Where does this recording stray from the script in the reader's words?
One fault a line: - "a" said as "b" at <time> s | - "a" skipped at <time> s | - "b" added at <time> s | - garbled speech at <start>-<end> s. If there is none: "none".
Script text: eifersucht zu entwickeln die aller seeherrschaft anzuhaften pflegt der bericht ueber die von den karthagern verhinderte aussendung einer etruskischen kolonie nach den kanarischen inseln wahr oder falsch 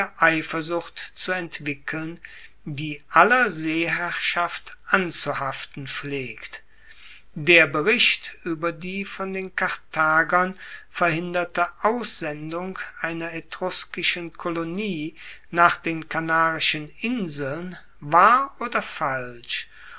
none